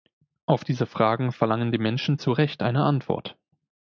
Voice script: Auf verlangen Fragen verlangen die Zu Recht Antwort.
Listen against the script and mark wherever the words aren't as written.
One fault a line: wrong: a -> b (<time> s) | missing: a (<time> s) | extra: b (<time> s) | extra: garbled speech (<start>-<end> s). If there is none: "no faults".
wrong: verlangen -> diese (0.6 s)
extra: Menschen (1.8 s)
extra: eine (2.6 s)